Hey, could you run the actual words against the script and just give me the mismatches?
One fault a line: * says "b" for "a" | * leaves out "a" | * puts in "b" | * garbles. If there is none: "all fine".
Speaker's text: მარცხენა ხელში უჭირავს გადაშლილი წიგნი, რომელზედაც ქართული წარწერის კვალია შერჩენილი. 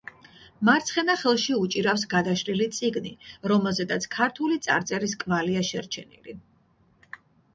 all fine